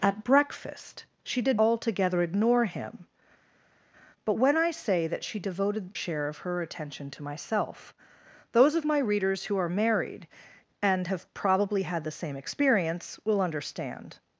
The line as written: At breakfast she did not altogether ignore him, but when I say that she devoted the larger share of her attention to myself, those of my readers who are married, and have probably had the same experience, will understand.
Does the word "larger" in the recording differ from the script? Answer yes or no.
yes